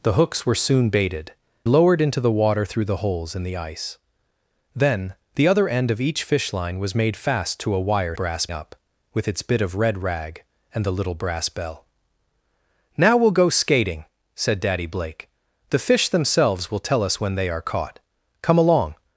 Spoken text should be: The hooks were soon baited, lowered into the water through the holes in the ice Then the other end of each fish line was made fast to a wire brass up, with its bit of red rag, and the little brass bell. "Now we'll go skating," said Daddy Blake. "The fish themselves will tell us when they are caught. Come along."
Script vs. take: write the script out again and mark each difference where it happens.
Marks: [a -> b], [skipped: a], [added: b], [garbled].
The hooks were soon baited, lowered into the water through the holes in the ice Then the other end of each fish line was made fast to a wire brass up, with its bit of red rag, and the little brass bell. "Now we'll go skating," said Daddy Blake. "The fish themselves will tell us when they are caught. Come along."